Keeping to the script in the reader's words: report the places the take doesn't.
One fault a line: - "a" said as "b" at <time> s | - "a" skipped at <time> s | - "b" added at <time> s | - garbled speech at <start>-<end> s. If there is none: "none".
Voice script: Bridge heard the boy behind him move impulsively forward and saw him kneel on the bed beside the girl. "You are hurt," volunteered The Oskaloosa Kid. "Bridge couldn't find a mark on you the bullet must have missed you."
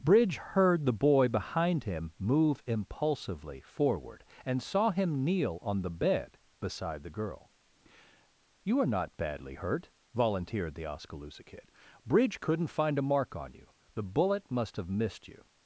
- "not badly" added at 8.9 s